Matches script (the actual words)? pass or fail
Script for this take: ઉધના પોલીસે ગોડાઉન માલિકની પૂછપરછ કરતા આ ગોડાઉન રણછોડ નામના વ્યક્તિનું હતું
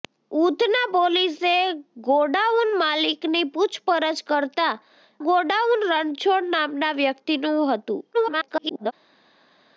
fail